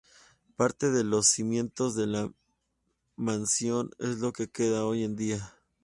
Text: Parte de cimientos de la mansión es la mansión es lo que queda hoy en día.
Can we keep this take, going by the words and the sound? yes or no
no